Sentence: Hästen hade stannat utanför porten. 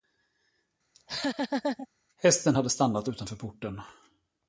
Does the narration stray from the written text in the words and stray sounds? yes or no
yes